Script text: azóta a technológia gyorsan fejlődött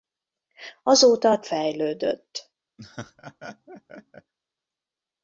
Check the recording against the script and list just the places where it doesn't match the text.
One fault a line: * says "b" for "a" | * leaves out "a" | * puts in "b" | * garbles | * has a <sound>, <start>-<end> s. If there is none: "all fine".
* leaves out "technológia gyorsan"
* has a laugh, 2.8-4.3 s